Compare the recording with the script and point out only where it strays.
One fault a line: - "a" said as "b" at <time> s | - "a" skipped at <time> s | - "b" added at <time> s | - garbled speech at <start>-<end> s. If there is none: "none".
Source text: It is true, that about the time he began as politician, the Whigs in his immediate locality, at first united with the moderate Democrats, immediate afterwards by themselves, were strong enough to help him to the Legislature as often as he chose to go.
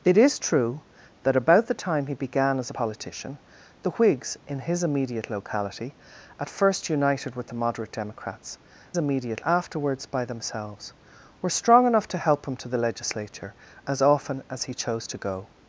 none